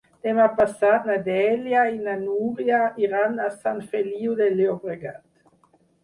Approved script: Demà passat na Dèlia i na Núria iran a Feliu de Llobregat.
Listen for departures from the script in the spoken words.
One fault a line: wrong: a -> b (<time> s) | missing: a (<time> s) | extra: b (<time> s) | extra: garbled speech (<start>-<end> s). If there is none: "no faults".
extra: Sant (3.6 s)